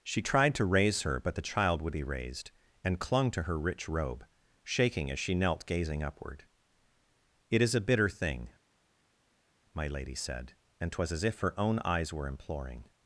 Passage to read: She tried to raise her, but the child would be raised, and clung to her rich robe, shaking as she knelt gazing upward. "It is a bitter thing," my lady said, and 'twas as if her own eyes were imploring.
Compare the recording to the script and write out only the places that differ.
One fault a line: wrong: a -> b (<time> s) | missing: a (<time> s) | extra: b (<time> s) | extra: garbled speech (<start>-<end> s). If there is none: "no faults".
no faults